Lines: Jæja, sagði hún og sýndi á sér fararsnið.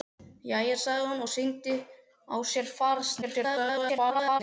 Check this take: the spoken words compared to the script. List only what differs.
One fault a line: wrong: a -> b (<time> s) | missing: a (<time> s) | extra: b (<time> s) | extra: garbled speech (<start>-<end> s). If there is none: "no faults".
extra: garbled speech (3.2-4.4 s)